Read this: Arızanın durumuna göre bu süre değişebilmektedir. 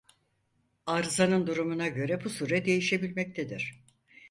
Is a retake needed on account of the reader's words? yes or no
no